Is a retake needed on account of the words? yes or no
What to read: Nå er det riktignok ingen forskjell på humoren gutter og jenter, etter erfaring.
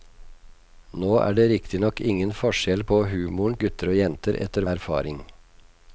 no